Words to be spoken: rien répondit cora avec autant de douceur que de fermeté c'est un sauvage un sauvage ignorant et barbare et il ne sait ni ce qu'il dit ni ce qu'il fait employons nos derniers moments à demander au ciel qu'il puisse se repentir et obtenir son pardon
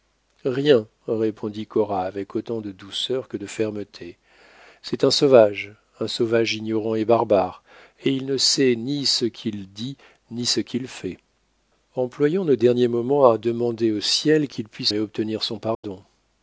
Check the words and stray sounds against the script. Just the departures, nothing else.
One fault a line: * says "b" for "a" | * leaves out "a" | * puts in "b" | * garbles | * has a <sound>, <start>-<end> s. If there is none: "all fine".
* leaves out "se repentir"
* has a dropout, 15.7-15.8 s